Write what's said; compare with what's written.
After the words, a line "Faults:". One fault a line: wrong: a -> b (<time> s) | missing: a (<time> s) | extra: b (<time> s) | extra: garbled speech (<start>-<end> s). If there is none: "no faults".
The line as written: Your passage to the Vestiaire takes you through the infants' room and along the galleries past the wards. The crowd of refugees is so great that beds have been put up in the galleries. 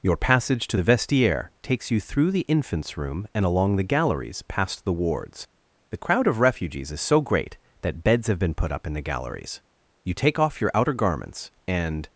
Your passage to the Vestiaire takes you through the infants' room and along the galleries past the wards. The crowd of refugees is so great that beds have been put up in the galleries. You take off your outer garments and
Faults:
extra: You take off your outer garments and (10.0 s)